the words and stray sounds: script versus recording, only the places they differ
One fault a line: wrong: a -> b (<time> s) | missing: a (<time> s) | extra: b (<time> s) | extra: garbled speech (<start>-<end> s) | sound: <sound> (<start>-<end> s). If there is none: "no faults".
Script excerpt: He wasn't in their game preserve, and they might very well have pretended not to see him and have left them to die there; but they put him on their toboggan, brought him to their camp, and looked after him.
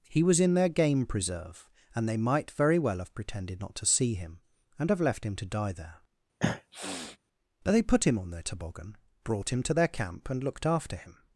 wrong: wasn't -> was (0.2 s)
wrong: them -> him (5.2 s)
sound: sniff (6.4-7.2 s)